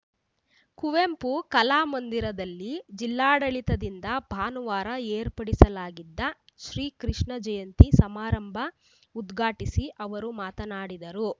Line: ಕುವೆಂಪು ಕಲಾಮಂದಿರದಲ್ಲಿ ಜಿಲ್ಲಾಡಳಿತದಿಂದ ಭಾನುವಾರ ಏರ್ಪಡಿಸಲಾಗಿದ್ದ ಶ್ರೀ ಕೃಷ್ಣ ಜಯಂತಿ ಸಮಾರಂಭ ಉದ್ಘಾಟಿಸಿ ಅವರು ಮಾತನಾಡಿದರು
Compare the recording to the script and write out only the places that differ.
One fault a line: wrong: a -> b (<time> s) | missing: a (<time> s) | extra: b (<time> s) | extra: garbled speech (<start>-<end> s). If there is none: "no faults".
no faults